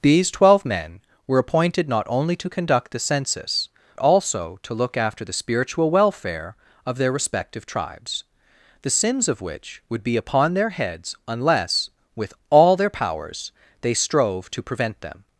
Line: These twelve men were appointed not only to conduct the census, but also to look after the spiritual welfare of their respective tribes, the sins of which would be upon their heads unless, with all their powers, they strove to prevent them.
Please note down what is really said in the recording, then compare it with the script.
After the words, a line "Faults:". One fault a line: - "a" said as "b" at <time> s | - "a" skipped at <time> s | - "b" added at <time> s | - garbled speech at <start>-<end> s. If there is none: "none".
These twelve men were appointed not only to conduct the census, also to look after the spiritual welfare of their respective tribes, the sins of which would be upon their heads unless, with all their powers, they strove to prevent them.
Faults:
- "but" skipped at 3.7 s